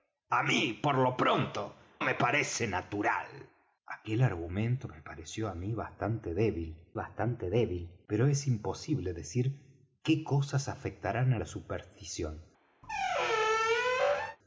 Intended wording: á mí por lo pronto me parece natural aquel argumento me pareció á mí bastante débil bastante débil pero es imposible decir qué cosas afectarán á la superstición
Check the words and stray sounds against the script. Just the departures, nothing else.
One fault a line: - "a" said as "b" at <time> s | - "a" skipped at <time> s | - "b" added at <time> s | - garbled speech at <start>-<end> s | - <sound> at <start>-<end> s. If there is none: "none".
- squeak at 12.8-14.4 s